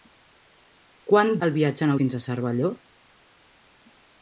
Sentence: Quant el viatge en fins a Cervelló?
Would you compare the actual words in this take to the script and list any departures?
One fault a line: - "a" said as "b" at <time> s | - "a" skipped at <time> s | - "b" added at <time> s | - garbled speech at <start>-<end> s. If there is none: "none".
none